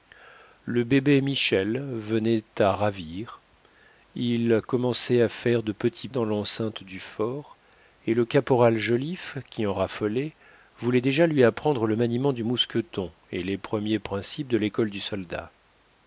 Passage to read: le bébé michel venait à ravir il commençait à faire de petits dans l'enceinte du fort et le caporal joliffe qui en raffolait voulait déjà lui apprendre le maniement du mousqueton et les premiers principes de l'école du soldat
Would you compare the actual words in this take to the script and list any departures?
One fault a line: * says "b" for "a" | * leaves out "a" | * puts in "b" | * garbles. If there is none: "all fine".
all fine